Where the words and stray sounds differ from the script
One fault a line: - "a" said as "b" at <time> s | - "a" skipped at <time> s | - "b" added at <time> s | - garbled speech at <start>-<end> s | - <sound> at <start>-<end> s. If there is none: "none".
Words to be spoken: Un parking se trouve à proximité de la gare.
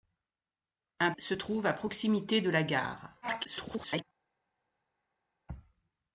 - "parking" skipped at 1.1 s
- garbled speech at 3.2-4.0 s